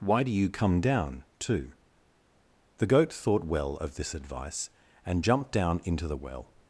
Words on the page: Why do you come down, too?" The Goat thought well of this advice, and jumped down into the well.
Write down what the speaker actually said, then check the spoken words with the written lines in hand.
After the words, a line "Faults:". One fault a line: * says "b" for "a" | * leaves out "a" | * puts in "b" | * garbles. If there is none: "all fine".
Why do you come down, too?" The Goat thought well of this advice, and jumped down into the well.
Faults:
all fine